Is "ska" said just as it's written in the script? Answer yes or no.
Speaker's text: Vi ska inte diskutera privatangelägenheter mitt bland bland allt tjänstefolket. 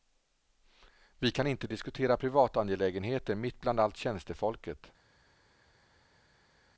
no